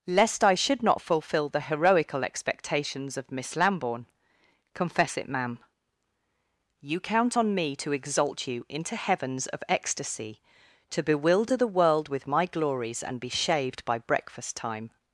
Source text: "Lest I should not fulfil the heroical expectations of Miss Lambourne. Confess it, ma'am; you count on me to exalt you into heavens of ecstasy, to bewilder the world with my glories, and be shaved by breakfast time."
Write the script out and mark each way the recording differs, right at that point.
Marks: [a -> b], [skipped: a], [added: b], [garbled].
"Lest I should not fulfil the heroical expectations of Miss Lambourne. Confess it, ma'am; you count on me to exalt you into heavens of ecstasy, to bewilder the world with my glories, and be shaved by breakfast time."